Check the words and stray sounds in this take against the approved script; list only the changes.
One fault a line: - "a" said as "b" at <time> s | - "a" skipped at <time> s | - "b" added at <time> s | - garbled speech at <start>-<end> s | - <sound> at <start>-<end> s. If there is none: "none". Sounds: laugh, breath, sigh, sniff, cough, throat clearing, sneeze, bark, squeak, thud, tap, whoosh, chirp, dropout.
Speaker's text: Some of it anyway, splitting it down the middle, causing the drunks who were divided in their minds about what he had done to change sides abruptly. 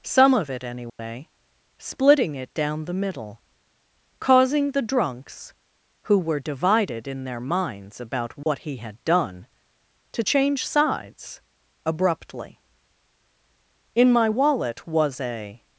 - dropout at 0.9-1.0 s
- dropout at 8.4-8.5 s
- "In my wallet was a" added at 13.9 s